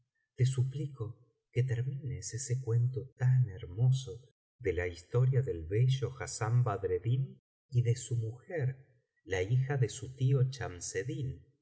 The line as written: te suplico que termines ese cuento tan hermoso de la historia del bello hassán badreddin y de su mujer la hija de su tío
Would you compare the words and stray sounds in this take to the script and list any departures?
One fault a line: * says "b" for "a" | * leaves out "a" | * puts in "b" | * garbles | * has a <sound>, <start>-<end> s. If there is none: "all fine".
all fine